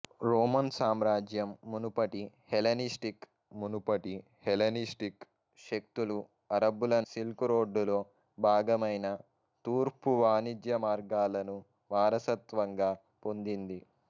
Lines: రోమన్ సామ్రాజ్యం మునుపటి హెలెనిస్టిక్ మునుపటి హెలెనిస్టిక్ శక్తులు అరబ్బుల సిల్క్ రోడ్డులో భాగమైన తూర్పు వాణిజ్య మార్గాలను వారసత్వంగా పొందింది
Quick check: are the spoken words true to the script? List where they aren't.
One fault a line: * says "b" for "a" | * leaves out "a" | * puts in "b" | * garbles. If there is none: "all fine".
all fine